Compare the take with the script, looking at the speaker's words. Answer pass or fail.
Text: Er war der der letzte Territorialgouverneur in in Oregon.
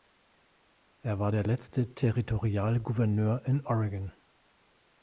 fail